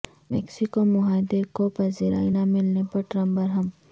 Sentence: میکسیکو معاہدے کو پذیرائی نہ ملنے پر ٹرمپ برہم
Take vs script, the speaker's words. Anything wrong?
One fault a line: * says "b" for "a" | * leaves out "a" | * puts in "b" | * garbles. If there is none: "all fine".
all fine